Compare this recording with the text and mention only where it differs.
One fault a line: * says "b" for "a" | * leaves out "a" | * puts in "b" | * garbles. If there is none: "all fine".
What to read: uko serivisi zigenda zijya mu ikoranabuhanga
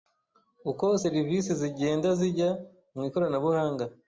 all fine